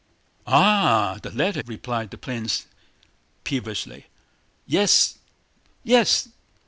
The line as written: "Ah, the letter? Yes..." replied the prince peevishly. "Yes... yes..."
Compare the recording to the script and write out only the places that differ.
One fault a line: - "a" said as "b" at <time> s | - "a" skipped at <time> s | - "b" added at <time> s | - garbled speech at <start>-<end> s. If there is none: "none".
- "Yes" skipped at 1.6 s